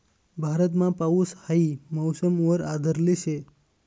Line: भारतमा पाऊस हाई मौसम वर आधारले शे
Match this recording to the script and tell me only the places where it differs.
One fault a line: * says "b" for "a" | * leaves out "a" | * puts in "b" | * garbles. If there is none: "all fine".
all fine